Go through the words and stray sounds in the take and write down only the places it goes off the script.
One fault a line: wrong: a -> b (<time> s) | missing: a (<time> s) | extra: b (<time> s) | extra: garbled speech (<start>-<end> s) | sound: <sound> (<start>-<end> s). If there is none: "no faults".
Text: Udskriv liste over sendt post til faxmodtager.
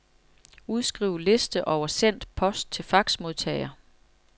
no faults